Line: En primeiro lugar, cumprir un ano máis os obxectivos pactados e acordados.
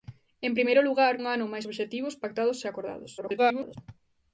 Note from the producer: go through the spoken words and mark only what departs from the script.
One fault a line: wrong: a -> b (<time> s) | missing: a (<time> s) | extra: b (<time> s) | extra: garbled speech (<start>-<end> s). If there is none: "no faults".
missing: cumprir (1.1 s)
missing: os (1.7 s)
extra: garbled speech (3.2-3.8 s)